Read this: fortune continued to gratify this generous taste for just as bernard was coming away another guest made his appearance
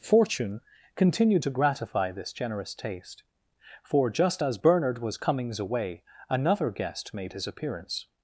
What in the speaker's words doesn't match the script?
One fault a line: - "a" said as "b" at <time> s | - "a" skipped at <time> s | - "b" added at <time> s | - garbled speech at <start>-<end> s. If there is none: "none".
- "coming" said as "comings" at 5.2 s